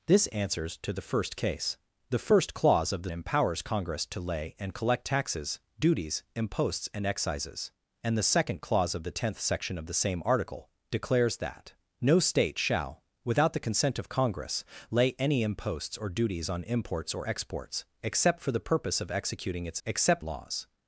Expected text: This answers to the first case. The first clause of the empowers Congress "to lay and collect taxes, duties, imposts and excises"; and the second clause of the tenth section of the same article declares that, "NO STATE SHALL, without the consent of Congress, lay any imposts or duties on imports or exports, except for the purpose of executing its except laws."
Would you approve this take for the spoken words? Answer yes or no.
yes